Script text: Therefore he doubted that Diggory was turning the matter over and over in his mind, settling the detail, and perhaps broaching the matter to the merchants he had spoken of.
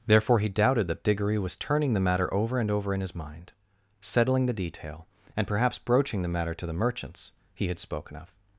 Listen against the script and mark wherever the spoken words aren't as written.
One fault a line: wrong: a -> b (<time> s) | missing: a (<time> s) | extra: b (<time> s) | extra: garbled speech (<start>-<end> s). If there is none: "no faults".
no faults